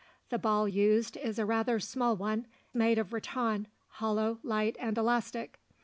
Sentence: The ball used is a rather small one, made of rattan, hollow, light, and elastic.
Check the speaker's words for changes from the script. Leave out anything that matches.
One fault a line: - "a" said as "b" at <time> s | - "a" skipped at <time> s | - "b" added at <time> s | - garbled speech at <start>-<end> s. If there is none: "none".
none